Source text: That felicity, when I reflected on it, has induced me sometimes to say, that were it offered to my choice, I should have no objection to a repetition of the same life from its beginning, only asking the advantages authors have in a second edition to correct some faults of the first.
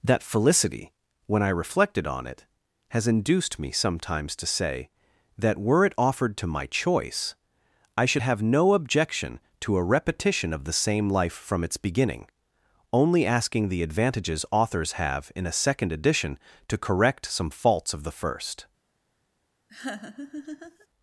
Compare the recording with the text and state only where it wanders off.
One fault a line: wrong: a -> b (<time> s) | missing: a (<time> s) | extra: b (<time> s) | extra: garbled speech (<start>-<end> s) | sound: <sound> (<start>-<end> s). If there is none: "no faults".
sound: laugh (19.7-20.9 s)